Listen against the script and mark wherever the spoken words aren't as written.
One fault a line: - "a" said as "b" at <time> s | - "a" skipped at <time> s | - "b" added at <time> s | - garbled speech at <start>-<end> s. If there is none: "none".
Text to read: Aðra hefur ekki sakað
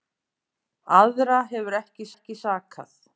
- "ekki" added at 2.1 s